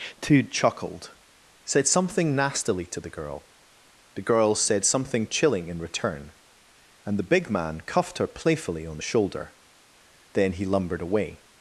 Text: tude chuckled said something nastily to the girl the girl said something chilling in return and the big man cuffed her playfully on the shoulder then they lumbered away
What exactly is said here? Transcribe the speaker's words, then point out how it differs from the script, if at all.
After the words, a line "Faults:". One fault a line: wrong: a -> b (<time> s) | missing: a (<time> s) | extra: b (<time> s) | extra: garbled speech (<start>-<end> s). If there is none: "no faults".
tude chuckled said something nastily to the girl the girl said something chilling in return and the big man cuffed her playfully on the shoulder then he lumbered away
Faults:
wrong: they -> he (10.5 s)